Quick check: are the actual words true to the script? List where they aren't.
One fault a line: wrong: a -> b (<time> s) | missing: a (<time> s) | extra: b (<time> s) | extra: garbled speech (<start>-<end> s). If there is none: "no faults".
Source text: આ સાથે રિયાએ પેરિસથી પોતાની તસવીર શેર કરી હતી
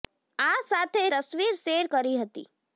missing: રિયાએ પેરિસથી પોતાની (1.0 s)